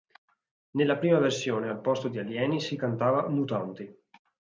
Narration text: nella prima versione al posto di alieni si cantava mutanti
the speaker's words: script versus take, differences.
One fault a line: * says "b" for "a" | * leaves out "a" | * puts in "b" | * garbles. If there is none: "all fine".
all fine